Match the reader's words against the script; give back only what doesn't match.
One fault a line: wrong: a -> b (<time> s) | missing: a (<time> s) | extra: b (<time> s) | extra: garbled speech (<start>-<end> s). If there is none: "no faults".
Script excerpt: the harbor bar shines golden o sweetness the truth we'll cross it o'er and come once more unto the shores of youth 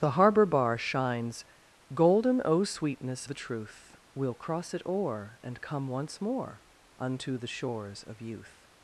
no faults